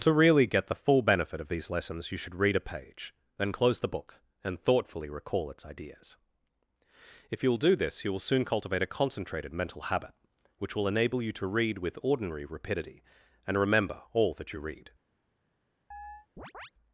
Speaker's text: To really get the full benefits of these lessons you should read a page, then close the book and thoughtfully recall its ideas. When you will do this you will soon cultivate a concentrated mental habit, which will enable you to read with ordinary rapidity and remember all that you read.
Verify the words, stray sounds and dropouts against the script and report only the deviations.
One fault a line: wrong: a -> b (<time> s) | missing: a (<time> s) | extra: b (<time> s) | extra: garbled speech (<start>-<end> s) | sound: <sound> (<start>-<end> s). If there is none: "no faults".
wrong: benefits -> benefit (1.0 s)
wrong: When -> If (7.3 s)
sound: chirp (15.9-16.7 s)